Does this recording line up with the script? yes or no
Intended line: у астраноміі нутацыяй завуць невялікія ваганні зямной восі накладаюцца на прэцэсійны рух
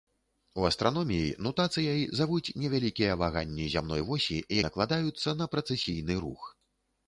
yes